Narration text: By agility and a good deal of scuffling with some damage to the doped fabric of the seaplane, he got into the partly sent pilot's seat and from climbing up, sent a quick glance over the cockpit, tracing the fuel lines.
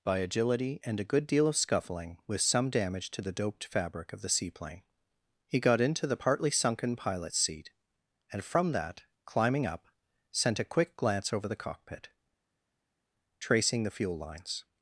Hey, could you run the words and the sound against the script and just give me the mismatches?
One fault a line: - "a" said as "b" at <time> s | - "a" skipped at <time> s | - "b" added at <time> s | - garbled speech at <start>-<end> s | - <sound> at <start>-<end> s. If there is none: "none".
- "sent" said as "sunken" at 6.5 s
- "that" added at 8.7 s